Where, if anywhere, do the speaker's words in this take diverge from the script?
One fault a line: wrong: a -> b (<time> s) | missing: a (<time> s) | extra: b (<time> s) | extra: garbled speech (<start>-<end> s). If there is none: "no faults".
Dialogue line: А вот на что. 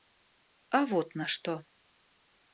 no faults